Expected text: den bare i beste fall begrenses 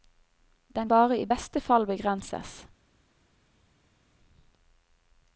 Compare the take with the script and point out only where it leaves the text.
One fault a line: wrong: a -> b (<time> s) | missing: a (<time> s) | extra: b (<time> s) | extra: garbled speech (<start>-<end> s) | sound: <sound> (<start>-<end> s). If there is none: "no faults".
no faults